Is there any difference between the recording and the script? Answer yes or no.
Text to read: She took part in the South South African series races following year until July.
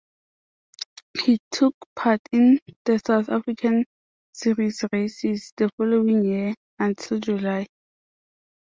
yes